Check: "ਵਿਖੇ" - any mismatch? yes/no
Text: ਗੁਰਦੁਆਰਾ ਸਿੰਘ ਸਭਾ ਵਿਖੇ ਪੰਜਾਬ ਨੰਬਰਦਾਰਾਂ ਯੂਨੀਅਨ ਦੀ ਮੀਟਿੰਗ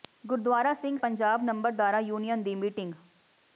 yes